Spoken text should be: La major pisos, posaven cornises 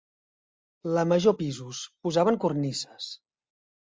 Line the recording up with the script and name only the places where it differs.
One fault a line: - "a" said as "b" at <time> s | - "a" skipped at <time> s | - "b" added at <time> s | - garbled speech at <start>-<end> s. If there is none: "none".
none